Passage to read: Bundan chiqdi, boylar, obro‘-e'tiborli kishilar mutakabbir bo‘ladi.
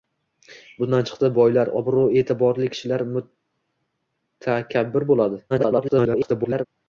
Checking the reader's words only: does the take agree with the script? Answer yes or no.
no